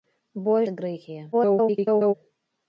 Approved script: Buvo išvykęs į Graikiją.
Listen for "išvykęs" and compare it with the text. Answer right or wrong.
wrong